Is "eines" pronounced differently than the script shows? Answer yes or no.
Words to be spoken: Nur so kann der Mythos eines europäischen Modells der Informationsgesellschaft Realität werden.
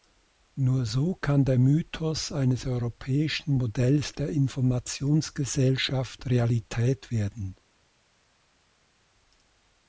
no